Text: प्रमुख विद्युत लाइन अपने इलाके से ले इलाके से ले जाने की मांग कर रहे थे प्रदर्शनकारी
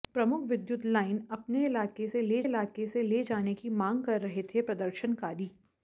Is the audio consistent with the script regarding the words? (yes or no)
yes